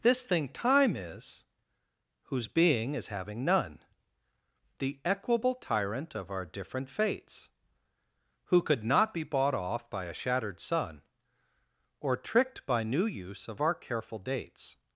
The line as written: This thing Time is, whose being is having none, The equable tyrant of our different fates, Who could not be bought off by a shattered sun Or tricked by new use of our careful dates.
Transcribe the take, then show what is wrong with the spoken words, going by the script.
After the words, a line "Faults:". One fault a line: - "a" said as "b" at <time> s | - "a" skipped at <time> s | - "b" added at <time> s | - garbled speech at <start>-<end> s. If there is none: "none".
This thing Time is, whose being is having none, The equable tyrant of our different fates, Who could not be bought off by a shattered sun Or tricked by new use of our careful dates.
Faults:
none